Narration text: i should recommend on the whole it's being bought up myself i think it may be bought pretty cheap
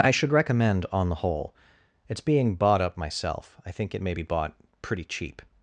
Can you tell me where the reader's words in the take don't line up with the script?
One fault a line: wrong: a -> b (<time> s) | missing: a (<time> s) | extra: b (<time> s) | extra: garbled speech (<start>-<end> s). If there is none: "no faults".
no faults